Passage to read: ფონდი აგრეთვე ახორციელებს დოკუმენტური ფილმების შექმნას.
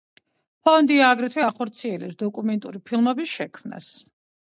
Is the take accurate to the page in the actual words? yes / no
yes